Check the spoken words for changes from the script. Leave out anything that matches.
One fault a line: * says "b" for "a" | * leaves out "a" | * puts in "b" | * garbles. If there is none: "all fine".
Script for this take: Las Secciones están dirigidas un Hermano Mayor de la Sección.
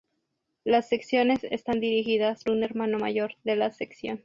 all fine